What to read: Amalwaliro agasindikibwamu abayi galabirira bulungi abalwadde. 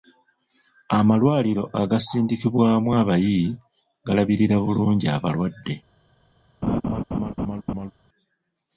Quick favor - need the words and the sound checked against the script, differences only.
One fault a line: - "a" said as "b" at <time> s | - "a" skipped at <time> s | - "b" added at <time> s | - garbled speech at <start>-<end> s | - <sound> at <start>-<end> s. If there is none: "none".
- laugh at 6.6-7.9 s